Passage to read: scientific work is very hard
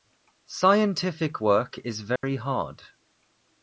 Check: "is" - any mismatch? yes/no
no